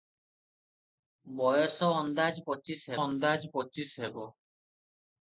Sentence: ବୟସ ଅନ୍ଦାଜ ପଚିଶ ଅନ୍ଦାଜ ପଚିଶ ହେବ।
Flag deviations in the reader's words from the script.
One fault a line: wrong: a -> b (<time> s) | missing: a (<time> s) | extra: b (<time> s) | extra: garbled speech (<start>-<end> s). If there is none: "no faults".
no faults